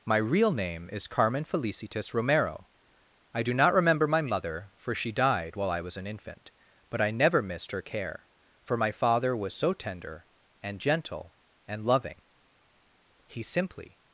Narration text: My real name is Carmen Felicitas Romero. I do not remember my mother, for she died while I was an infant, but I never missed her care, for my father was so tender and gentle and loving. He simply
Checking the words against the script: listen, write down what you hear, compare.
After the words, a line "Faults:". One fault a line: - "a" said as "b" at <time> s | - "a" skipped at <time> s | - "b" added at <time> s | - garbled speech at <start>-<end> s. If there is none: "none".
My real name is Carmen Felicitas Romero. I do not remember my mother, for she died while I was an infant, but I never missed her care, for my father was so tender and gentle and loving. He simply
Faults:
none